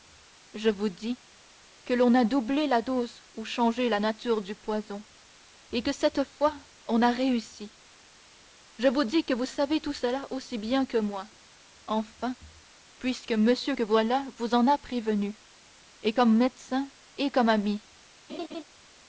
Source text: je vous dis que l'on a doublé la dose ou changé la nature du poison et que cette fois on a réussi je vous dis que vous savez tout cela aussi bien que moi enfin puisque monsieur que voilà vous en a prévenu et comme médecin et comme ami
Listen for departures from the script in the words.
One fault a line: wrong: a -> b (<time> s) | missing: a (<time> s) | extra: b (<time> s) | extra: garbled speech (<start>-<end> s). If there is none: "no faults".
no faults